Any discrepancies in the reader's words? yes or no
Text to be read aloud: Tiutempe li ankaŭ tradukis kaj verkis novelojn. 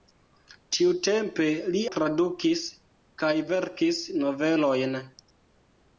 yes